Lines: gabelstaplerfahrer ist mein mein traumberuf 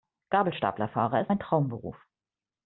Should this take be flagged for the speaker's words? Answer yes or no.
yes